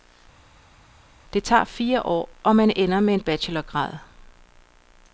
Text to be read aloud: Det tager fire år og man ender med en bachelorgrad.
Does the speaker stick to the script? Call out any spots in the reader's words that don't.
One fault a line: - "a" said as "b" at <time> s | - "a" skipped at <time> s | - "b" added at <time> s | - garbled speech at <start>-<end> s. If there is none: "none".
none